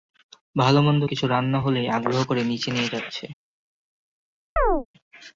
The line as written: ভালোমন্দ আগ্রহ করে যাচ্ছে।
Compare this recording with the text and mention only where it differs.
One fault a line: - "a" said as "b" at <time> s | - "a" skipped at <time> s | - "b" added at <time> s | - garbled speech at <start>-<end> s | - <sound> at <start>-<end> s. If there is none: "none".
- "কিছু রান্না হলেই" added at 1.0 s
- "নিচে নিয়ে" added at 2.4 s
- chirp at 4.6-4.9 s